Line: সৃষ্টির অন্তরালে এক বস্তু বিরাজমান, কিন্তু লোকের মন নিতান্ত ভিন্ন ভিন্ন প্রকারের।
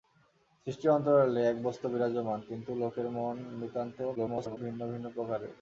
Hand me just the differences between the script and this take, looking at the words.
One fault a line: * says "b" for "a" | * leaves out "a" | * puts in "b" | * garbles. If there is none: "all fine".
* garbles